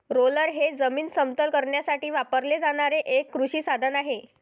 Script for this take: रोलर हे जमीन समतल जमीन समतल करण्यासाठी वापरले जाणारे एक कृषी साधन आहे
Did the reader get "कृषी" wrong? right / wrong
right